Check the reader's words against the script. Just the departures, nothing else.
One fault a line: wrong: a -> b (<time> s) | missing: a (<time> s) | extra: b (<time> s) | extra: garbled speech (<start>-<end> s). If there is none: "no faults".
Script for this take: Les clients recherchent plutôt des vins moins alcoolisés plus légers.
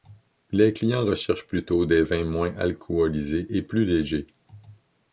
extra: et (3.5 s)